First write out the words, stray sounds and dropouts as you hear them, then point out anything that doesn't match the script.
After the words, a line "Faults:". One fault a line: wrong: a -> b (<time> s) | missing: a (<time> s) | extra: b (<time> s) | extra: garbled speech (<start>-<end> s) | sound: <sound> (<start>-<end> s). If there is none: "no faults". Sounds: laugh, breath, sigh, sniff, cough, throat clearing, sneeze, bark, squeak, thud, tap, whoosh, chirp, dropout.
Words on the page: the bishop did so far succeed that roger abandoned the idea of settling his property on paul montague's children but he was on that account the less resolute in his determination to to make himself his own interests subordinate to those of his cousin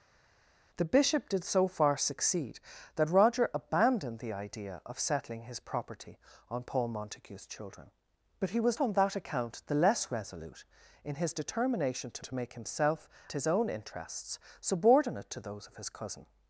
the bishop did so far succeed that roger abandoned the idea of settling his property on paul montague's children but he was on that account the less resolute in his determination to to make himself his own interests subordinate to those of his cousin
Faults:
no faults